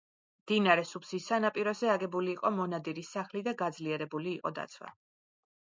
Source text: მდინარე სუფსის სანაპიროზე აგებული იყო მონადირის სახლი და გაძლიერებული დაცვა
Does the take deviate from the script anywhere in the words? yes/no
yes